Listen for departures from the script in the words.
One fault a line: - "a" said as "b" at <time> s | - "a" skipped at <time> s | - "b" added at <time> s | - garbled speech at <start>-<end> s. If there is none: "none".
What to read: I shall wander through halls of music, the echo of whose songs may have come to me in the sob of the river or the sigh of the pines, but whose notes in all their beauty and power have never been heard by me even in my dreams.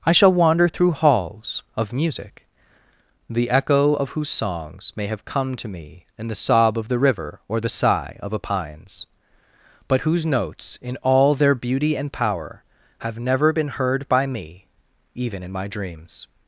- "the" said as "a" at 8.3 s